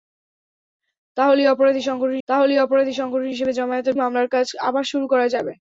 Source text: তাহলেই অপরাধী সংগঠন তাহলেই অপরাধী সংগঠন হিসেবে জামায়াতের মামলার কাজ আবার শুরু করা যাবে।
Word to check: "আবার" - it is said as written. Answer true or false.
true